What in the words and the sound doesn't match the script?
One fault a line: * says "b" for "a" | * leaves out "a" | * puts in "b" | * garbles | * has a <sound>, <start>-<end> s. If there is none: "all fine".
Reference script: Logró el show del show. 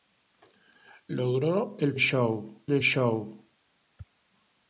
all fine